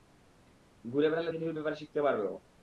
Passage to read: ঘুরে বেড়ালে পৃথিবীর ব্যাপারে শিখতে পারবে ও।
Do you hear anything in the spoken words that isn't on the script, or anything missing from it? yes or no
no